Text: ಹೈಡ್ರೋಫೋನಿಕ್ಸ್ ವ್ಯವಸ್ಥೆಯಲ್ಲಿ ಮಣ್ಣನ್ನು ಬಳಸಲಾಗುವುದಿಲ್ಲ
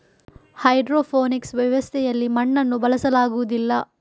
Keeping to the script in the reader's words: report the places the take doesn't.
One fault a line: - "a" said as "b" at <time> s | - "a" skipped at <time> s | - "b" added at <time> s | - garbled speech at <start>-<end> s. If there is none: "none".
none